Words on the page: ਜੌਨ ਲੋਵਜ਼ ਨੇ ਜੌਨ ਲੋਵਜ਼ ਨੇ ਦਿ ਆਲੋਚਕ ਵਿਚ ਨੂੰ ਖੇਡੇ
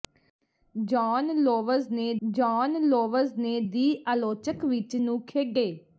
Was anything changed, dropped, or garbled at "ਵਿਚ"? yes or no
no